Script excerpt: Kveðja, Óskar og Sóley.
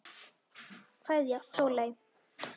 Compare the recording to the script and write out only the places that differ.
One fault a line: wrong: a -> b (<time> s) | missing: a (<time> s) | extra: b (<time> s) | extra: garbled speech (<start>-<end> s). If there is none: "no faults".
missing: Óskar (1.4 s)